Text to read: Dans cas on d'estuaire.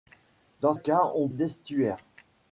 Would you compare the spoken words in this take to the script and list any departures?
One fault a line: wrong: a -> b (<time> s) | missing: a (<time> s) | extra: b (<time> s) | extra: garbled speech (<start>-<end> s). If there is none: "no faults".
no faults